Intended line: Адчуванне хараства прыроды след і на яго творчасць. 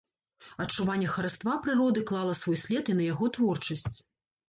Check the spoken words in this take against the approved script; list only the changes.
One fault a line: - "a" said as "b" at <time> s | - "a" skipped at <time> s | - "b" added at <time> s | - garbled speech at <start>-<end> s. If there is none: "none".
- "клала свой" added at 2.1 s